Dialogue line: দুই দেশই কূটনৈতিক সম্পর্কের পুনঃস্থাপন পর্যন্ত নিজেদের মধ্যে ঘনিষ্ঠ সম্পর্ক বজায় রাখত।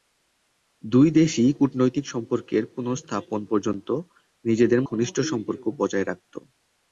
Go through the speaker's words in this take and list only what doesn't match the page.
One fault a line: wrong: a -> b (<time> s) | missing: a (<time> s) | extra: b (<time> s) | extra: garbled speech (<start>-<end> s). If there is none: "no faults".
missing: মধ্যে (4.8 s)